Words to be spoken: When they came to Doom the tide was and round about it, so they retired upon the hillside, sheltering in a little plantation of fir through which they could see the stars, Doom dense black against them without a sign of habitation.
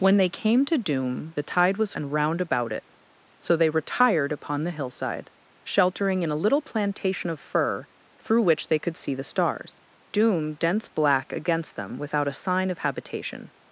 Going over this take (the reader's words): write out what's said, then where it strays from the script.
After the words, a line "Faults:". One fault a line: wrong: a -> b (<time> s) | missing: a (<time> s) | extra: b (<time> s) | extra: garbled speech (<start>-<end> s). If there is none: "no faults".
When they came to Doom the tide was and round about it, so they retired upon the hillside, sheltering in a little plantation of fir through which they could see the stars, Doom dense black against them without a sign of habitation.
Faults:
no faults